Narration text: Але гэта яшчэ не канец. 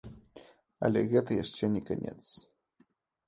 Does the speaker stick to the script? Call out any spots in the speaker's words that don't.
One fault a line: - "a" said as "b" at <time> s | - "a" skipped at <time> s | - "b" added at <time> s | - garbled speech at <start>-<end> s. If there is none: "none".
none